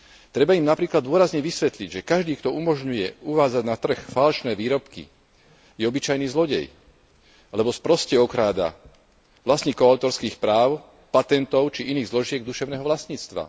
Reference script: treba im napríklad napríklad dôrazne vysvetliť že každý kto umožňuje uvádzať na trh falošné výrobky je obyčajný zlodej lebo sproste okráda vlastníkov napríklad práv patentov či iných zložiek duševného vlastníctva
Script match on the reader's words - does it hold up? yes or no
no